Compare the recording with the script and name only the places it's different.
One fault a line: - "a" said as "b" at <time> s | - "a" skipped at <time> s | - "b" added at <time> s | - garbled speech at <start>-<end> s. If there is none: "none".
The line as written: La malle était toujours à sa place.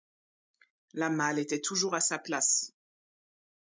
none